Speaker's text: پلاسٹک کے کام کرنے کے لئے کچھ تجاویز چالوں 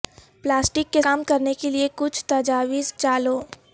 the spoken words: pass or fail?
pass